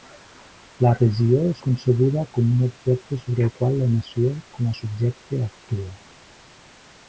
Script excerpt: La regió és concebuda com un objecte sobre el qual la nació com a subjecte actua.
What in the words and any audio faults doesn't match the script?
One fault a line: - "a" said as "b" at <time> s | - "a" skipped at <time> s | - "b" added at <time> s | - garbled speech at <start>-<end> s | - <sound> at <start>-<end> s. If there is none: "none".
none